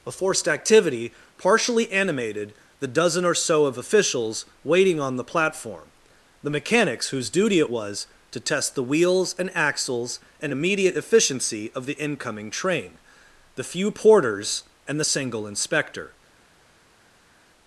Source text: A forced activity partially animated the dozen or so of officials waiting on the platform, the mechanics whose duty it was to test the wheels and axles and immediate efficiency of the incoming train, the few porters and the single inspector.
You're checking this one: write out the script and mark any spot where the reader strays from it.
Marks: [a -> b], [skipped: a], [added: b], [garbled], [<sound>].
A forced activity partially animated the dozen or so of officials waiting on the platform, the mechanics whose duty it was to test the wheels and axles and immediate efficiency of the incoming train, the few porters and the single inspector.